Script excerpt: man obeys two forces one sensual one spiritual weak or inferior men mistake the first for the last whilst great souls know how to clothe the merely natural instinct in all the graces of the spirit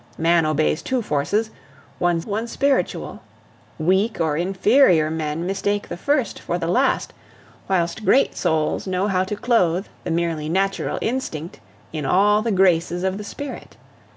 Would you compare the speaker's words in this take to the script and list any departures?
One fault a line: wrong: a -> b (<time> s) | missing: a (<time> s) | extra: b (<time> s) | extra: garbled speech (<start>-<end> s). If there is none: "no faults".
missing: sensual (2.2 s)